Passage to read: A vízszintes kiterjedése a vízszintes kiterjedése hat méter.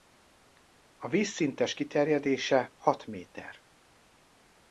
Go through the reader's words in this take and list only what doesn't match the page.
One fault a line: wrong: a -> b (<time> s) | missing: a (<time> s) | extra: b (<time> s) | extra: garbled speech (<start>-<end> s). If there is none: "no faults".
missing: a vízszintes kiterjedése (2.7 s)